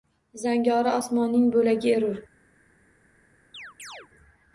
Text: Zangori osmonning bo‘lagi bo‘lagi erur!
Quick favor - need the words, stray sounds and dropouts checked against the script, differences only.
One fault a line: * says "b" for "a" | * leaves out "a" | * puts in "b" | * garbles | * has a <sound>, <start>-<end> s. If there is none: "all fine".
* leaves out "bo‘lagi"
* has a chirp, 3.5-4.1 s